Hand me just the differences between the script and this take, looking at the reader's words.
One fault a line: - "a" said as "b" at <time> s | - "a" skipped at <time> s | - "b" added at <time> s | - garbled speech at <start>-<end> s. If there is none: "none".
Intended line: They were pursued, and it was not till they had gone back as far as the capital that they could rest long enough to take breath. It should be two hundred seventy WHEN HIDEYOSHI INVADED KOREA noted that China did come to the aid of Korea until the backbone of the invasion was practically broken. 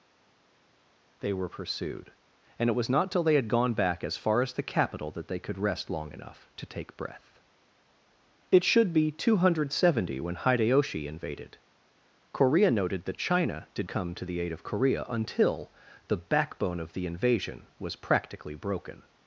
none